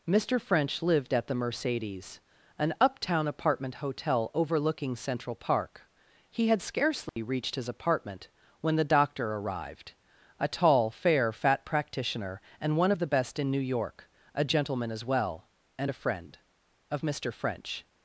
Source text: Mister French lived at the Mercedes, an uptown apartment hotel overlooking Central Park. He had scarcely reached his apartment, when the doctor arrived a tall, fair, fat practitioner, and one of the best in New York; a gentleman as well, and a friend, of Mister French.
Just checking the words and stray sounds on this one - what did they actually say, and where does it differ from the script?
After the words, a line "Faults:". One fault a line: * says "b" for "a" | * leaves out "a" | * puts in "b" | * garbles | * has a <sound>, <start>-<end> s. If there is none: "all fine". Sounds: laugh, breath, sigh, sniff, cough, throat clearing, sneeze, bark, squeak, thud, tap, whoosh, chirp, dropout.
Mister French lived at the Mercedes, an uptown apartment hotel overlooking Central Park. He had scarcely reached his apartment, when the doctor arrived a tall, fair, fat practitioner, and one of the best in New York; a gentleman as well, and a friend, of Mister French.
Faults:
* has a dropout, 7.1-7.2 s